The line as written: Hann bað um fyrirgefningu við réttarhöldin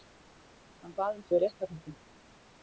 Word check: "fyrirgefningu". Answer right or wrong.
wrong